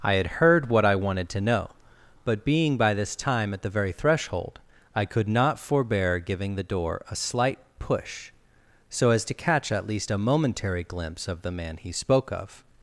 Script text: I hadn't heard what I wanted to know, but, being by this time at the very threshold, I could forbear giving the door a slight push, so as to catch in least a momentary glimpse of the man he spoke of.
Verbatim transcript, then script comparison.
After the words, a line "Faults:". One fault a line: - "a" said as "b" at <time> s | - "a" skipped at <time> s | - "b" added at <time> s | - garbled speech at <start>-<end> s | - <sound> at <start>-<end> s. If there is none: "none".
I had heard what I wanted to know, but, being by this time at the very threshold, I could not forbear giving the door a slight push, so as to catch at least a momentary glimpse of the man he spoke of.
Faults:
- "hadn't" said as "had" at 0.1 s
- "not" added at 5.3 s
- "in" said as "at" at 9.7 s